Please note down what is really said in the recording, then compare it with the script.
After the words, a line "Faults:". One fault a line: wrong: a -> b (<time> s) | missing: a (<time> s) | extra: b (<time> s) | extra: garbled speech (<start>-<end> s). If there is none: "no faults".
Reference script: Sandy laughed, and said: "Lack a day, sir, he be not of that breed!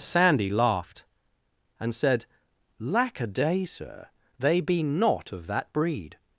Sandy laughed, and said: "Lack a day, sir, they be not of that breed!
Faults:
wrong: he -> they (4.4 s)